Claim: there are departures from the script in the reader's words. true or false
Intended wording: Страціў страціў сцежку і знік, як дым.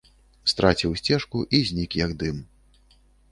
true